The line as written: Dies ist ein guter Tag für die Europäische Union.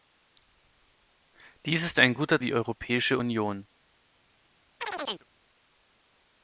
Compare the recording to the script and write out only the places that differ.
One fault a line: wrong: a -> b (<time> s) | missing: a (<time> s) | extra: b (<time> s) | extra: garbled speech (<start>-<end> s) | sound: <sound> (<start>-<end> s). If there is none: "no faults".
missing: Tag für (2.4 s)
sound: chirp (4.8-5.3 s)